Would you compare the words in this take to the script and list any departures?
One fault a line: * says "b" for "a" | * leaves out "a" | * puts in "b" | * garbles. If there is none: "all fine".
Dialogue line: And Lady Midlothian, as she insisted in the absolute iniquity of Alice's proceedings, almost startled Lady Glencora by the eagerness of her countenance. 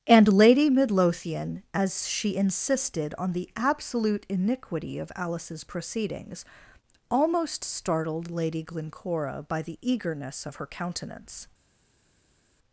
* says "on" for "in"